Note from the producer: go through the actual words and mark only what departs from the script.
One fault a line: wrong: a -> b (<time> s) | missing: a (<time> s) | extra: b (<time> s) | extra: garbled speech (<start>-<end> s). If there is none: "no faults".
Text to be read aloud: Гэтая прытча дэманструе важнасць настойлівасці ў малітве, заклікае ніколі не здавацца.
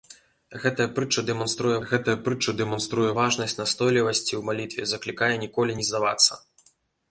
extra: гэтая прытча дэманструе (1.9 s)